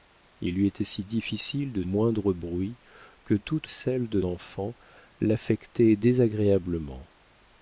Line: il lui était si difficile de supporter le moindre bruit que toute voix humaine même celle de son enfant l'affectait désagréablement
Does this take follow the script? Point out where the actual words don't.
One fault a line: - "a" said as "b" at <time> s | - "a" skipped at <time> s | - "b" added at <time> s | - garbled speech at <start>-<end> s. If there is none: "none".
- "supporter le" skipped at 1.8 s
- "voix humaine même" skipped at 3.7 s
- "son" skipped at 4.2 s